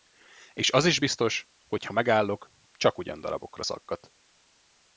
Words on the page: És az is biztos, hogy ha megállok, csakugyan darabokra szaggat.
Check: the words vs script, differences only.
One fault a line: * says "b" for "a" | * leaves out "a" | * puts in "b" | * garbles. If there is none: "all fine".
all fine